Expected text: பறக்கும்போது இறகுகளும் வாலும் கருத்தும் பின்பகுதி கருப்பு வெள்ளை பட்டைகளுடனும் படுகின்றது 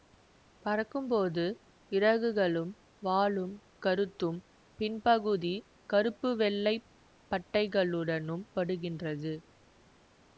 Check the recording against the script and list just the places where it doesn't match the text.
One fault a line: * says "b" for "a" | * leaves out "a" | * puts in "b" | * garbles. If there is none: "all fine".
all fine